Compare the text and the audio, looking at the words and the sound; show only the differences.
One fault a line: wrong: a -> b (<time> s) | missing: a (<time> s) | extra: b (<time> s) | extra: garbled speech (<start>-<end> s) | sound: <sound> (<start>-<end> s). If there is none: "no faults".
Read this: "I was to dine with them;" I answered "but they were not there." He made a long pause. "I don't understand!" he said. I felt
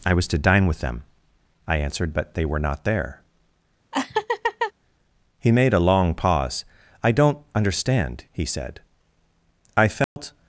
sound: laugh (3.9-4.7 s)
sound: dropout (10.0-10.2 s)